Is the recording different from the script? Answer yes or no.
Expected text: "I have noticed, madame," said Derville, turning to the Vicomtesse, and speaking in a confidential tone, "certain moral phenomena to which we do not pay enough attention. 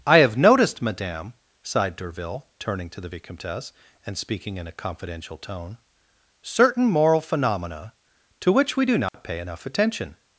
yes